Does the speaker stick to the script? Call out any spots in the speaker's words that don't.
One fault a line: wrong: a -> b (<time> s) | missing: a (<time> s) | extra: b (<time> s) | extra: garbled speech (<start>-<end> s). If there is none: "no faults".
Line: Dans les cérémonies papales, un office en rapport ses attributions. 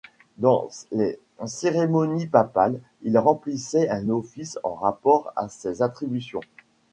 extra: il remplissait (3.0 s)
extra: à (5.4 s)